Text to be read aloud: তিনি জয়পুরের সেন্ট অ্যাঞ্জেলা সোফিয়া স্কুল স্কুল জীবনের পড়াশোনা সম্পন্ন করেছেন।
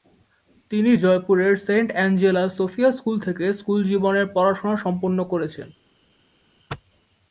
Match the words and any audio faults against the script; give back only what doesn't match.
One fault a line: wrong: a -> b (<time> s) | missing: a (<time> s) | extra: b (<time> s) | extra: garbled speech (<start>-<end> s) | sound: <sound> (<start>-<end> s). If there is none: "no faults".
extra: থেকে (3.2 s)